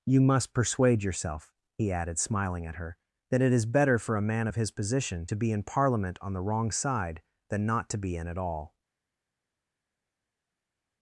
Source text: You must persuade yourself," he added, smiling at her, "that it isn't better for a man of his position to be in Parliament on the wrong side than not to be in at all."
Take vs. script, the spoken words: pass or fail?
fail